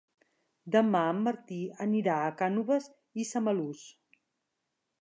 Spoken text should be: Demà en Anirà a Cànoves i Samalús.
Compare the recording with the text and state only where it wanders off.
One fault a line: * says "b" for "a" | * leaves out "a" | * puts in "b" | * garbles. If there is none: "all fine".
* puts in "Martí"